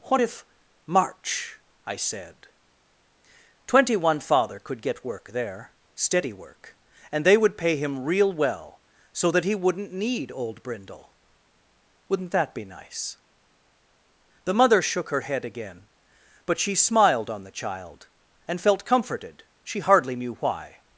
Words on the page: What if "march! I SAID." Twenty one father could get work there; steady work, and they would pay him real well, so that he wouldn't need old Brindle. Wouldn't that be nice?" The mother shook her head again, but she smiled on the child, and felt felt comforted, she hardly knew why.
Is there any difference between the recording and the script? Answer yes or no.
yes